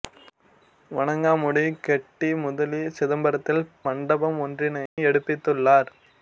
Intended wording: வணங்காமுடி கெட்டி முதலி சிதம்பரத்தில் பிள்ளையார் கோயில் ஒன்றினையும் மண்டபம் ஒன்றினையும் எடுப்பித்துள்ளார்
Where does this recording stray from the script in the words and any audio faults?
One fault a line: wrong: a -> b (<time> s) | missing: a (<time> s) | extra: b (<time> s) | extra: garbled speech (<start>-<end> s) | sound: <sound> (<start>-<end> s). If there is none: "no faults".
missing: பிள்ளையார் கோயில் ஒன்றினையும் (3.6 s)
sound: dropout (4.9-5.0 s)